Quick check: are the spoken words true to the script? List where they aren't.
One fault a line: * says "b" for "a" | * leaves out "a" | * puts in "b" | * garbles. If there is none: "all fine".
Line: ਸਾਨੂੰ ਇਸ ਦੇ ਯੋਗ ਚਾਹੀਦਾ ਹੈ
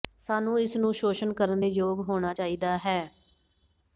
* puts in "ਨੂੰ ਸ਼ੋਸ਼ਣ ਕਰਨ"
* puts in "ਹੋਣਾ"